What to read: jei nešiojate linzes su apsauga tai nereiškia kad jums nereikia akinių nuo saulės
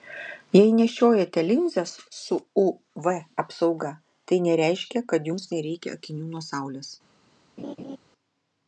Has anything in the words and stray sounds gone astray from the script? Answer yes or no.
yes